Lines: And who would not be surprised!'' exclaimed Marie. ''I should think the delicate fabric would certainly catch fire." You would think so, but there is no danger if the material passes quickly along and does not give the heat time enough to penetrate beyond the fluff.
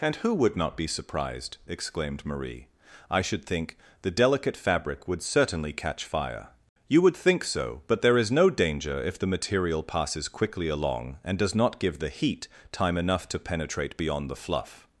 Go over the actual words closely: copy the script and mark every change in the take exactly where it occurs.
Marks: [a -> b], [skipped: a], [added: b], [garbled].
And who would not be surprised!'' exclaimed Marie. ''I should think the delicate fabric would certainly catch fire." You would think so, but there is no danger if the material passes quickly along and does not give the heat time enough to penetrate beyond the fluff.